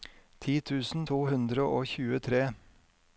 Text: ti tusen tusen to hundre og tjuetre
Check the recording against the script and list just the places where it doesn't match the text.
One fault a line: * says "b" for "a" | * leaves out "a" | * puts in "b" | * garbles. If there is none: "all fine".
* leaves out "tusen"